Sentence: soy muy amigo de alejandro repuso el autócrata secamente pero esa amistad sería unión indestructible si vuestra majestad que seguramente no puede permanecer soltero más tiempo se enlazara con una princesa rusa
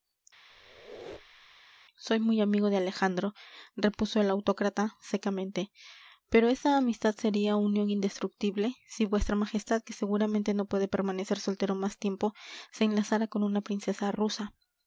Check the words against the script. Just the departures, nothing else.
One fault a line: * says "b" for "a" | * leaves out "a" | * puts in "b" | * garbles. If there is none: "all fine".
all fine